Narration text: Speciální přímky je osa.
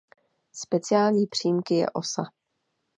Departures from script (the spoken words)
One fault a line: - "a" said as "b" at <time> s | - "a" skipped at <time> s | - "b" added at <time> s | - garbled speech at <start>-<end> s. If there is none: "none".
none